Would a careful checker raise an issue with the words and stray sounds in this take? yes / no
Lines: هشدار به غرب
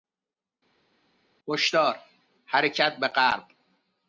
yes